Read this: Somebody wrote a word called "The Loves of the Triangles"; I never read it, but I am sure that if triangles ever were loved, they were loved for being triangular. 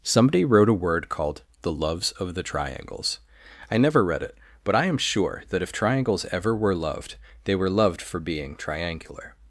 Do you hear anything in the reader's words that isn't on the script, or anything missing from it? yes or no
no